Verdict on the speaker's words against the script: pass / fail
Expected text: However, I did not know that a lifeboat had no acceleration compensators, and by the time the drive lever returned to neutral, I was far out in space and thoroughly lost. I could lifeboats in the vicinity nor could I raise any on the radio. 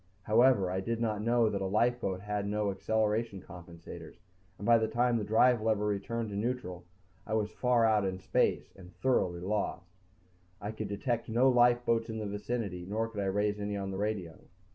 fail